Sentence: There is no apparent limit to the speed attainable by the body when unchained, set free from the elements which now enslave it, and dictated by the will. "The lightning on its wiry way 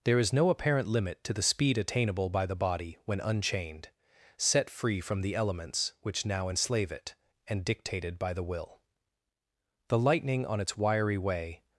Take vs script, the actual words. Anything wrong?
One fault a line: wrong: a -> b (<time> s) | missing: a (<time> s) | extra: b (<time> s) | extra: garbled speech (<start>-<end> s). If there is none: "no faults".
no faults